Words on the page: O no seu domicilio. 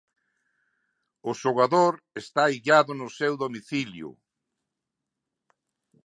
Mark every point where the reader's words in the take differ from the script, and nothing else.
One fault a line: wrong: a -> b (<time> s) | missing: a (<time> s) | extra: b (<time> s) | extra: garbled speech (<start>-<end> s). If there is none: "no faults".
extra: xogador está illado (1.4 s)